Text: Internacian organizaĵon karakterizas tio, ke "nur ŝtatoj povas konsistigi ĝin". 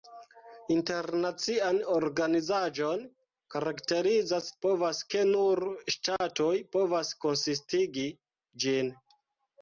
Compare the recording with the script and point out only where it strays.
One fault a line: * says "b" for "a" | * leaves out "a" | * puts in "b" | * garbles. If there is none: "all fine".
* says "povas" for "tio"